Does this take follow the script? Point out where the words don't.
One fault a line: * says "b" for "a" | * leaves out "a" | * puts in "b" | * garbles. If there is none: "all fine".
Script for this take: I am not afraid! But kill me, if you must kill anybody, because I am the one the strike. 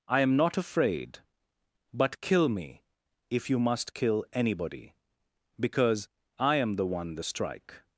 all fine